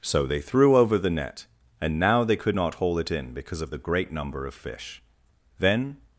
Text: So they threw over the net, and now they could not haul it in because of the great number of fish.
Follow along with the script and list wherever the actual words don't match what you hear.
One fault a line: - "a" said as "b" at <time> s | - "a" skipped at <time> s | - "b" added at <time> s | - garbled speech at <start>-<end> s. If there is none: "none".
- "Then" added at 5.6 s